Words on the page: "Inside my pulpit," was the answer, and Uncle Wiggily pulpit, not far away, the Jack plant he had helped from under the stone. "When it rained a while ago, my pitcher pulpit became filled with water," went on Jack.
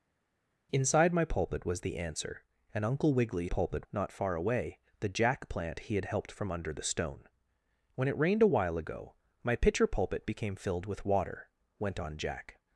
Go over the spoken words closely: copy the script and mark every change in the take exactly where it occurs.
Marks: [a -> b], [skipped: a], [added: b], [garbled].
"Inside my pulpit," was the answer, and Uncle Wiggily pulpit, not far away, the Jack plant he had helped from under the stone. "When it rained a while ago, my pitcher pulpit became filled with water," went on Jack.